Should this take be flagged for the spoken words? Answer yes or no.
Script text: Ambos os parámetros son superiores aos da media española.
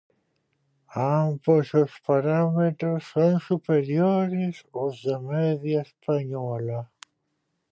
no